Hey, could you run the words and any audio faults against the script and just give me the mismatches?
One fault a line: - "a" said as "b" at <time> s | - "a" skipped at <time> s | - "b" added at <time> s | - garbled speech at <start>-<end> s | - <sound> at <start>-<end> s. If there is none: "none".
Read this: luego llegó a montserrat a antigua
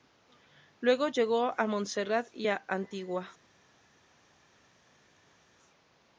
- "y" added at 2.3 s